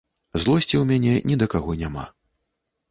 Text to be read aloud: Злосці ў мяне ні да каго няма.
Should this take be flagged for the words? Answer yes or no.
no